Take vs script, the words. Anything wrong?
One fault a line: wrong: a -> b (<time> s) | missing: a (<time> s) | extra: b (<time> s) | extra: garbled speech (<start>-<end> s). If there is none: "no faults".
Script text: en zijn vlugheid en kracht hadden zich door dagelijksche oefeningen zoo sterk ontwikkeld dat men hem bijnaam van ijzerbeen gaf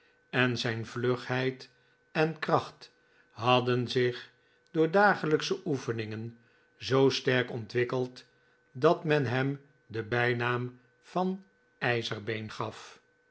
extra: den (9.8 s)